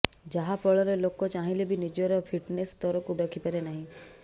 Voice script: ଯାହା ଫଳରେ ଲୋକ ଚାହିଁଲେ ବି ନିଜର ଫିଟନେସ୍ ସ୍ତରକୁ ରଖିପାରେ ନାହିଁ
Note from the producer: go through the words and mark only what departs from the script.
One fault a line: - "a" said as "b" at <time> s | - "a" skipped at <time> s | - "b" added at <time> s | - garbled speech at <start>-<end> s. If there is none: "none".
none